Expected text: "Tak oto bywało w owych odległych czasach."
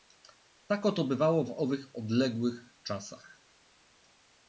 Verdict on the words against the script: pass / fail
pass